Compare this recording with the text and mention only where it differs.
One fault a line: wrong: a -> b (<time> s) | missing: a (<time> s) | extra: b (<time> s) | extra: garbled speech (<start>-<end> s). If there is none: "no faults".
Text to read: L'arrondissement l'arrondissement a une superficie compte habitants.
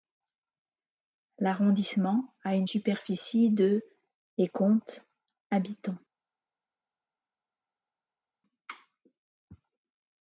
missing: l'arrondissement (2.3 s)
extra: de et (3.5 s)